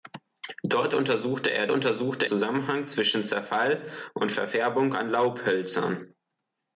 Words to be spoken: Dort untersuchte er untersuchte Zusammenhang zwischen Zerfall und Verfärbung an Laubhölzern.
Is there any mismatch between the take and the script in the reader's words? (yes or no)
no